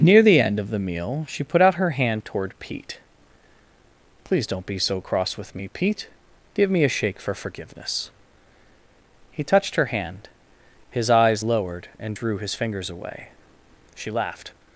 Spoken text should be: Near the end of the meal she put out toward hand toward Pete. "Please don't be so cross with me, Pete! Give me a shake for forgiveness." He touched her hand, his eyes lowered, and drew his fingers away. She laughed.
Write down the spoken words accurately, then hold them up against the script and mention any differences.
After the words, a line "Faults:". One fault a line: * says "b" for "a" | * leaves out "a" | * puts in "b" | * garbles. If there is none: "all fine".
Near the end of the meal she put out her hand toward Pete. "Please don't be so cross with me, Pete! Give me a shake for forgiveness." He touched her hand, his eyes lowered, and drew his fingers away. She laughed.
Faults:
* says "her" for "toward"